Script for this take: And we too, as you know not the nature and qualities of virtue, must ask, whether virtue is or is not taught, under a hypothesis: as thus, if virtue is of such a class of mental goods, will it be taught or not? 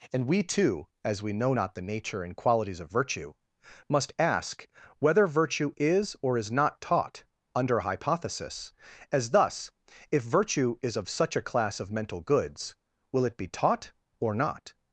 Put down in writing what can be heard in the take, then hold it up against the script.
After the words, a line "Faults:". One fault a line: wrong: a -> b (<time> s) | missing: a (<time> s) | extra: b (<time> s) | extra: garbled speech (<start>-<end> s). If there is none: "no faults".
And we too, as we know not the nature and qualities of virtue, must ask, whether virtue is or is not taught, under a hypothesis: as thus, if virtue is of such a class of mental goods, will it be taught or not?
Faults:
wrong: you -> we (1.2 s)